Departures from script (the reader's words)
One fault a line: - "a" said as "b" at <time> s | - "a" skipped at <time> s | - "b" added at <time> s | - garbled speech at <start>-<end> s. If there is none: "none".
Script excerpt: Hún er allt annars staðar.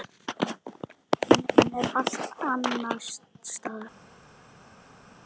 - "hún" added at 1.5 s